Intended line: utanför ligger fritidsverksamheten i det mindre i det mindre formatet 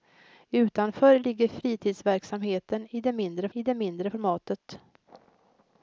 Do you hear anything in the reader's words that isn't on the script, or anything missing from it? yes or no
no